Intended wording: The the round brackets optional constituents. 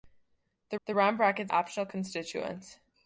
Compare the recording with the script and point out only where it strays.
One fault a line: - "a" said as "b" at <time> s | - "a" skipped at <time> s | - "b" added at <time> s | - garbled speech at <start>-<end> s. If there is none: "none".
none